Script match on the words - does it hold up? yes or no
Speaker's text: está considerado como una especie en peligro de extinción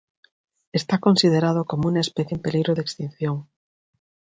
yes